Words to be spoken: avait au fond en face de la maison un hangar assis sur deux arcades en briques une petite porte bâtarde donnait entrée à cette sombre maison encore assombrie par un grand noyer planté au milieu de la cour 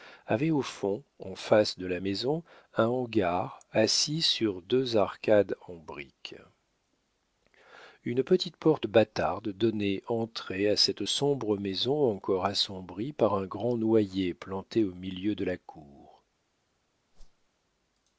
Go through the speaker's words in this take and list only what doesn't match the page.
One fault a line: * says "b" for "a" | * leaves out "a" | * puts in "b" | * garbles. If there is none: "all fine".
all fine